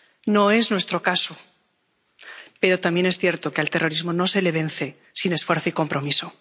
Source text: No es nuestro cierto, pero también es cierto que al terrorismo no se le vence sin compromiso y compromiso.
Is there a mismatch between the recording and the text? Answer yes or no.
yes